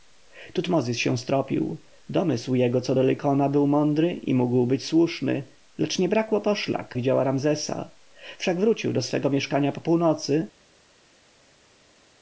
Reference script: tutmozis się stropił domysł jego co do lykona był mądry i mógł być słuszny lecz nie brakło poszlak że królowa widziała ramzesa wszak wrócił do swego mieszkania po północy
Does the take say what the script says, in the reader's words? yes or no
no